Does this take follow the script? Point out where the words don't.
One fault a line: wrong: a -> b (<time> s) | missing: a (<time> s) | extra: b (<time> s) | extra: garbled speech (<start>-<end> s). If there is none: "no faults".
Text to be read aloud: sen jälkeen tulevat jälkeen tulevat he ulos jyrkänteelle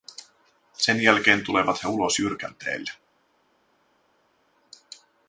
missing: jälkeen tulevat (1.9 s)